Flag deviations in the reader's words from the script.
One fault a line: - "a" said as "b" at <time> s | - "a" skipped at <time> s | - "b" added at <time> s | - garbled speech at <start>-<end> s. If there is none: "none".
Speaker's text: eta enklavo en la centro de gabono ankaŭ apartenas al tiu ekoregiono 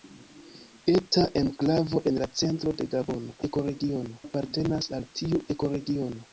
- "ankaŭ" said as "ekoregiono" at 3.5 s